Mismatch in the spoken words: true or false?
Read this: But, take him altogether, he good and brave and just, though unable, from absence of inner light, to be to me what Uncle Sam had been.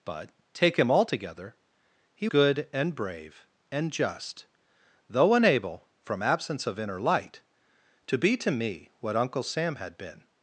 false